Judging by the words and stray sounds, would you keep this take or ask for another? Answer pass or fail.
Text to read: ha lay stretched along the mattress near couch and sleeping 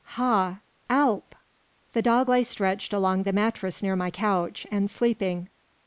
fail